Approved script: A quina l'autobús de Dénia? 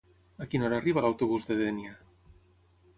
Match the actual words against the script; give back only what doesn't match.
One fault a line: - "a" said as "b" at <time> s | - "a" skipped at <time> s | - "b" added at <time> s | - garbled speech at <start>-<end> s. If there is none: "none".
- "hora arriba" added at 0.7 s